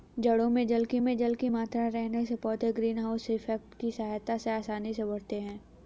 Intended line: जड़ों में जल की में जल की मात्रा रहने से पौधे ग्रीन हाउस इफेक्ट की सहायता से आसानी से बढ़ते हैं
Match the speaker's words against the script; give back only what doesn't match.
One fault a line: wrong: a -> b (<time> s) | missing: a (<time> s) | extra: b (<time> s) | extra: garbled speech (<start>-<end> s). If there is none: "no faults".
no faults